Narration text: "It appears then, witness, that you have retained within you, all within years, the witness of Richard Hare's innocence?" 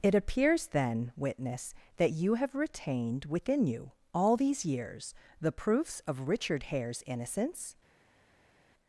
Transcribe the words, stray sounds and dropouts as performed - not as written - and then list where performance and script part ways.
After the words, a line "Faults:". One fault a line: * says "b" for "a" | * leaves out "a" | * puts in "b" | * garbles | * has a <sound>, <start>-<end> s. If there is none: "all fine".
"It appears then, witness, that you have retained within you, all these years, the proofs of Richard Hare's innocence?"
Faults:
* says "these" for "within"
* says "proofs" for "witness"